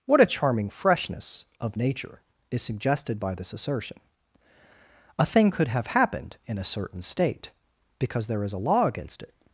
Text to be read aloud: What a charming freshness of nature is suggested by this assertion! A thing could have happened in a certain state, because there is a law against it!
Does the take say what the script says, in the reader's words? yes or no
yes